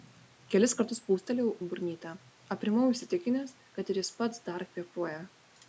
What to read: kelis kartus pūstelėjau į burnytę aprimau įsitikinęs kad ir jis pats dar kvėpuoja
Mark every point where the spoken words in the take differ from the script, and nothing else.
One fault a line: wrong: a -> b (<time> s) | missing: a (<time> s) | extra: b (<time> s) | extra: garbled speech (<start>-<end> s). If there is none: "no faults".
no faults